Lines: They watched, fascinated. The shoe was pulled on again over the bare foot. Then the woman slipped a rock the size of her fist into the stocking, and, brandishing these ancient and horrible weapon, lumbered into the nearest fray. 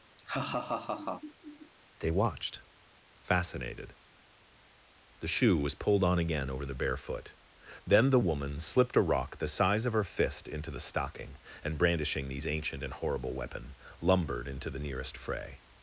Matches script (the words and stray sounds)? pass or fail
fail